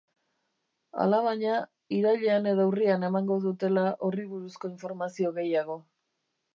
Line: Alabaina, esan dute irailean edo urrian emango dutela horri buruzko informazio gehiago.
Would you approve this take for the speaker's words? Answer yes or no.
no